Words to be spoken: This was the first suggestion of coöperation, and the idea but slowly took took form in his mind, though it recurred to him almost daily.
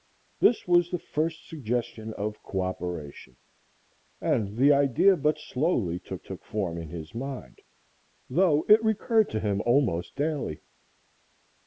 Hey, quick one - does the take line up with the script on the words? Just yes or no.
yes